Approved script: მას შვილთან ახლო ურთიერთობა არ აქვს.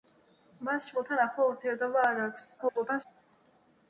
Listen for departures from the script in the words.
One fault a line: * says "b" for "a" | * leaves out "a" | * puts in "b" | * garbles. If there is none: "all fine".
* garbles